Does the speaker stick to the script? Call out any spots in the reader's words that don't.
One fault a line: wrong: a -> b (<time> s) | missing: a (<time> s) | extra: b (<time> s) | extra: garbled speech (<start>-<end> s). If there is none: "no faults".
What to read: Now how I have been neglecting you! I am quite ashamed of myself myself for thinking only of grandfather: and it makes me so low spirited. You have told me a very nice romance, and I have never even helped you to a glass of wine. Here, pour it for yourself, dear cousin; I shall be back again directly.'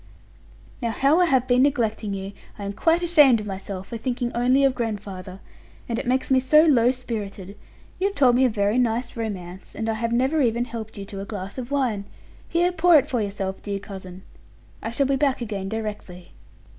missing: myself (3.9 s)